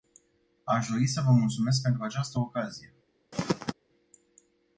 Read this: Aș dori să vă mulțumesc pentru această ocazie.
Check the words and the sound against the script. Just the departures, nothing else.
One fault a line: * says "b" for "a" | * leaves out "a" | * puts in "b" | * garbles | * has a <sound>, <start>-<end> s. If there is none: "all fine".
* has a throat clearing, 3.3-3.7 s